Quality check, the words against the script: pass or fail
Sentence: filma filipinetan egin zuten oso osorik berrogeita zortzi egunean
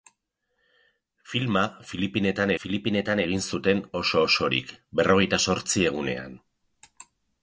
fail